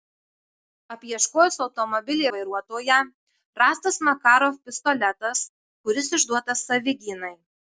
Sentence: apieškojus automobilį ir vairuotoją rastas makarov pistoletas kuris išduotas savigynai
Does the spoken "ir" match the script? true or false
false